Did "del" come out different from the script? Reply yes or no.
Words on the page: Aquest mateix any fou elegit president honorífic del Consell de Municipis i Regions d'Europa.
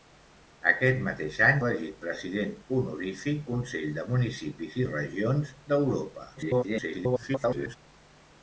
yes